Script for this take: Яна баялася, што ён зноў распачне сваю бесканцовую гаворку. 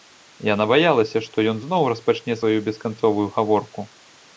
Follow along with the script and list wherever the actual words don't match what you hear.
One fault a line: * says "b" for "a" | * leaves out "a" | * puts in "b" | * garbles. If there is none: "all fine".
all fine